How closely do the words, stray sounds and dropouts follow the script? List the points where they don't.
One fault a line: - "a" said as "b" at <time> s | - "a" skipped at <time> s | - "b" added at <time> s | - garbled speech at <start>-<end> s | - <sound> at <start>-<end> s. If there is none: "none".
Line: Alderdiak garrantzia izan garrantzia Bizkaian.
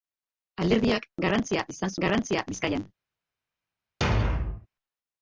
- thud at 4.0-4.7 s